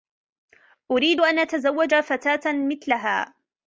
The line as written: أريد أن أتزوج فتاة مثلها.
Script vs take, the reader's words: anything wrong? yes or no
no